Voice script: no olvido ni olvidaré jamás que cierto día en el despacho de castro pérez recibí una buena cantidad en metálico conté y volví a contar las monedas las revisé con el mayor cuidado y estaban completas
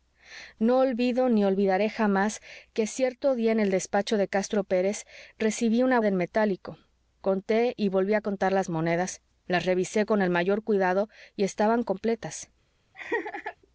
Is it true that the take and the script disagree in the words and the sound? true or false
true